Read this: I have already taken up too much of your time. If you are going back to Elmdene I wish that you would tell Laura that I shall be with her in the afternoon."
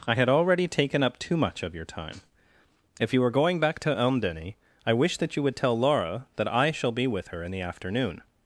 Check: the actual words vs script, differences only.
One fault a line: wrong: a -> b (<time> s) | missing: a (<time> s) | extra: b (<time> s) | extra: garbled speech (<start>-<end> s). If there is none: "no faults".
wrong: have -> had (0.1 s)